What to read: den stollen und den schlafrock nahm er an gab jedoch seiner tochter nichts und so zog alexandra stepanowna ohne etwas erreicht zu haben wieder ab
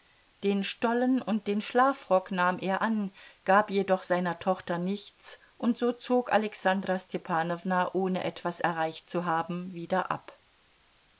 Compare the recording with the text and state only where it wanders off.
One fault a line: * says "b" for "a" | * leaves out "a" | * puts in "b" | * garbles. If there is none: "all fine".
all fine